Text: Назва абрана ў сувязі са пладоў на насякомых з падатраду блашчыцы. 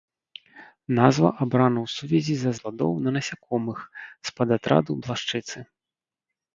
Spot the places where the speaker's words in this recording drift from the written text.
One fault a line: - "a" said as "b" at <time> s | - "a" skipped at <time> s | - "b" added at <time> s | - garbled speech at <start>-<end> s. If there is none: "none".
none